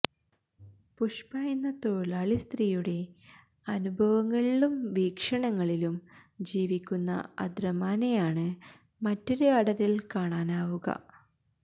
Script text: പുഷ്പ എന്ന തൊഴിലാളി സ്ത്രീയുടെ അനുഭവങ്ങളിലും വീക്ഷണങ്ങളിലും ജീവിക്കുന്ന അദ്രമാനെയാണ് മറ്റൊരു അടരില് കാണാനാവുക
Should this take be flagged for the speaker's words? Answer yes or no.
no